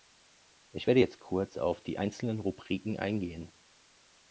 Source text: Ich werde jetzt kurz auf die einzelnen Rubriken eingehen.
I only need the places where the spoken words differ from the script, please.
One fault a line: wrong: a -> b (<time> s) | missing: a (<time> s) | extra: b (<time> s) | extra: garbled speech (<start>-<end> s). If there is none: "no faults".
no faults